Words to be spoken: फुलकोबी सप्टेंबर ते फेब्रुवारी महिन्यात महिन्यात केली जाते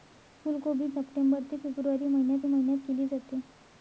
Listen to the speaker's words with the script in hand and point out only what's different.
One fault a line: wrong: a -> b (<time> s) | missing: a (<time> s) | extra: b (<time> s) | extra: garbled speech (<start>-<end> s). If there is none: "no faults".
no faults